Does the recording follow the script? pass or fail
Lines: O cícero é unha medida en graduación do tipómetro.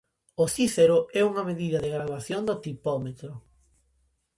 fail